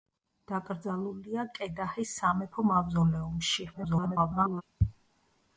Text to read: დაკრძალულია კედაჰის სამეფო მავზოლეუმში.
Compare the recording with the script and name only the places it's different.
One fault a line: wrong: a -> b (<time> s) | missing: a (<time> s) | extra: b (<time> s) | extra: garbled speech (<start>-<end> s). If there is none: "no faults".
extra: garbled speech (3.7-4.6 s)